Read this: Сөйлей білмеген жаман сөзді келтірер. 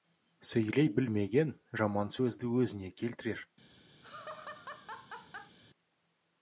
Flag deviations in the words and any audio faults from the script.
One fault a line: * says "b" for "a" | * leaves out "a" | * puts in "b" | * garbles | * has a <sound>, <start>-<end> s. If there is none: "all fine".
* puts in "өзіне"
* has a laugh, 4.0-5.6 s